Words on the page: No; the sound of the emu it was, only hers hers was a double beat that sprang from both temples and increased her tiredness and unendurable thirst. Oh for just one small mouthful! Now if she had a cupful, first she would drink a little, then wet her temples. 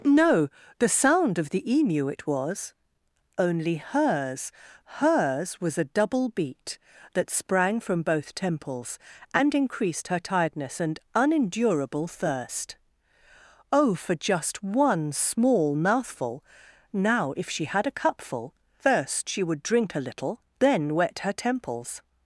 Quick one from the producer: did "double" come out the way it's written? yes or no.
yes